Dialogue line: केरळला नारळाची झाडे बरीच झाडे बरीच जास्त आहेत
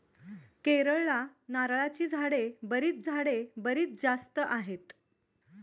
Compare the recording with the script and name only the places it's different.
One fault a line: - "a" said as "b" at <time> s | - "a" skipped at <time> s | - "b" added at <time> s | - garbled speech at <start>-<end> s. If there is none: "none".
none